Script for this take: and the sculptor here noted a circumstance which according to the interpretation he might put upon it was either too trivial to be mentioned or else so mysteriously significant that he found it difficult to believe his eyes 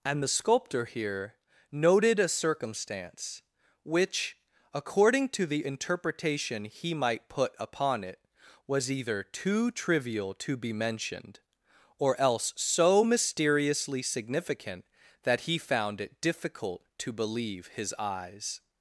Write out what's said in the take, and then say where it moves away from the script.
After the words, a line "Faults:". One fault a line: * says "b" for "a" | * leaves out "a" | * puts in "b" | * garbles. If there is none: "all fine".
and the sculptor here noted a circumstance which according to the interpretation he might put upon it was either too trivial to be mentioned or else so mysteriously significant that he found it difficult to believe his eyes
Faults:
all fine